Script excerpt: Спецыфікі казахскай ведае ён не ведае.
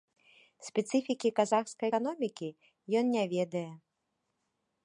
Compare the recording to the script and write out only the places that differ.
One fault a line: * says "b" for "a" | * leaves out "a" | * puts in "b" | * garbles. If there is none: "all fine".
* says "эканомікі" for "ведае"